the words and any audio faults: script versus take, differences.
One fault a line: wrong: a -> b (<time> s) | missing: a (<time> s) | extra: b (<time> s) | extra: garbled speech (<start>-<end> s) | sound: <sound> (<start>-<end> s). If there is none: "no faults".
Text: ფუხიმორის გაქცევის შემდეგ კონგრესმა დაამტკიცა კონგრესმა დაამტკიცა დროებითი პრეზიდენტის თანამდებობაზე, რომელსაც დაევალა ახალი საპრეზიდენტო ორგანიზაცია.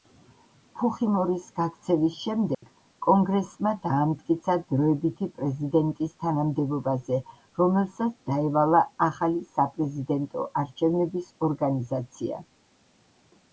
sound: dropout (2.5-2.6 s)
missing: კონგრესმა დაამტკიცა (4.5 s)
extra: არჩევნების (10.6 s)